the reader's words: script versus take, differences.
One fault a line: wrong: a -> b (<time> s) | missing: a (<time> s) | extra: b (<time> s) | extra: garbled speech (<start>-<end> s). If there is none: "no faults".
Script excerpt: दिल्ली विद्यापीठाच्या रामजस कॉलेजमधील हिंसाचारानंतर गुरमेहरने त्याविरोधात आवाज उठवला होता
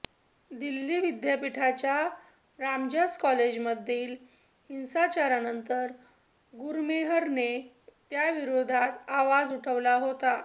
no faults